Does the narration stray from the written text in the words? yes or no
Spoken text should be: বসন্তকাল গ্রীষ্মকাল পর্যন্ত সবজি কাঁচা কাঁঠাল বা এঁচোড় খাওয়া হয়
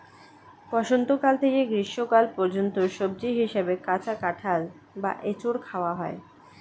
yes